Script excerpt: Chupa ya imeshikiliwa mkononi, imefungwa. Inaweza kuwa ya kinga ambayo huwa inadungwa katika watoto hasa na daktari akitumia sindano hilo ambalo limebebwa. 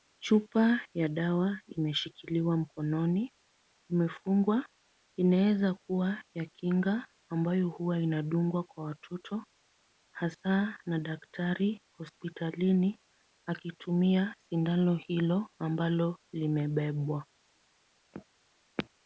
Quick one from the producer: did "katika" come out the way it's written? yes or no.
no